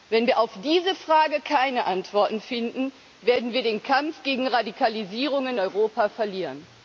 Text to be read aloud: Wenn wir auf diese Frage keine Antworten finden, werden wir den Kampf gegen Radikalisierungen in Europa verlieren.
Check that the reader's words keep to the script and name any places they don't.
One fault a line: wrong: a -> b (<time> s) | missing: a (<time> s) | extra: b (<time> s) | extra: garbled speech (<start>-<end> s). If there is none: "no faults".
missing: in (5.6 s)